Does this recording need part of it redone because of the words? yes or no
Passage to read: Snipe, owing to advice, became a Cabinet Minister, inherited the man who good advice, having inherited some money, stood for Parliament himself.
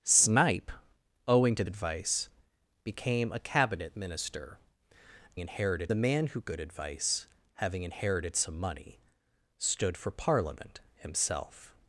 no